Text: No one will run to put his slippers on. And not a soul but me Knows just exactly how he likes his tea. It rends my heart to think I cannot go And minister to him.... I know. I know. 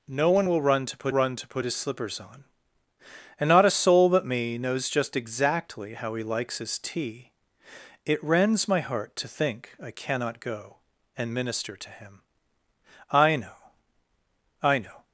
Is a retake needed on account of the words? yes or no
yes